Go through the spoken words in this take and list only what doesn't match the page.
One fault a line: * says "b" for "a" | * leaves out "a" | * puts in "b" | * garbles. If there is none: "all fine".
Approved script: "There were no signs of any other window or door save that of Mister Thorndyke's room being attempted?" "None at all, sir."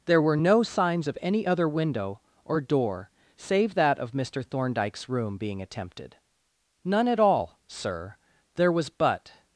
* puts in "There was but"